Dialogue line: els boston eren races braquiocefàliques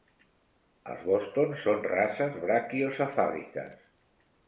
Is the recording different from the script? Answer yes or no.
yes